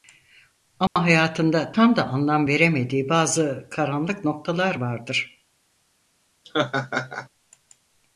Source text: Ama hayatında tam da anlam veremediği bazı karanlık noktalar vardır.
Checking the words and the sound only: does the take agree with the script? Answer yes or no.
no